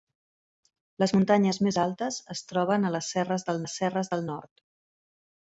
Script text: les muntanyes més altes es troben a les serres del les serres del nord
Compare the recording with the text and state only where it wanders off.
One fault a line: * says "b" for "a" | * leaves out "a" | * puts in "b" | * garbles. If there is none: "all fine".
all fine